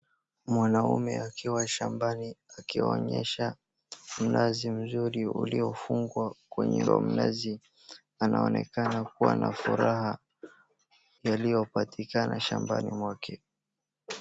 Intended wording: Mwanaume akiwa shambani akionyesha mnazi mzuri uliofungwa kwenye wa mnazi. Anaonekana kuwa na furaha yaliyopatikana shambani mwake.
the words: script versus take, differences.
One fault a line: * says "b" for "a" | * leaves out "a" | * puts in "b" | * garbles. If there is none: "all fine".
all fine